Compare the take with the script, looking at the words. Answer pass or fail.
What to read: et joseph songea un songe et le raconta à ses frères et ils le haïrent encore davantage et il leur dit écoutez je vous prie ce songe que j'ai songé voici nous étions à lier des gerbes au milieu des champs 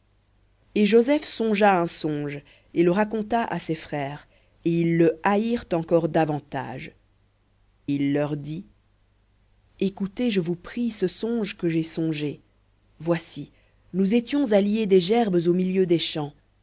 fail